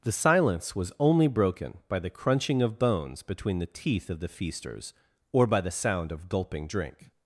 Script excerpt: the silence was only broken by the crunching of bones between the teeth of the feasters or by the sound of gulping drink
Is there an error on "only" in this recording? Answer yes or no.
no